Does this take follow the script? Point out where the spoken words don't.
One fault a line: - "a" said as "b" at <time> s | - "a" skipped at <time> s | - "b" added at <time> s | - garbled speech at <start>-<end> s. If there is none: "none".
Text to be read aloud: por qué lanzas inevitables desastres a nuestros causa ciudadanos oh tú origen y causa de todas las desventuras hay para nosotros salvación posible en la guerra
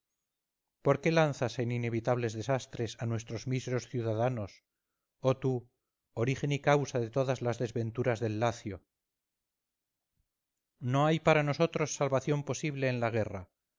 - "en" added at 1.6 s
- "causa" said as "míseros" at 3.5 s
- "del lacio no" added at 8.2 s